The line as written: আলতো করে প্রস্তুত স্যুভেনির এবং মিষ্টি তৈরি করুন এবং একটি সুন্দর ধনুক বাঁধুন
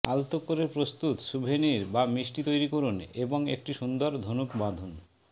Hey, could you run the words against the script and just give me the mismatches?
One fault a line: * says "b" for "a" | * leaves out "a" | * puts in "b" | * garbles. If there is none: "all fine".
* says "বা" for "এবং"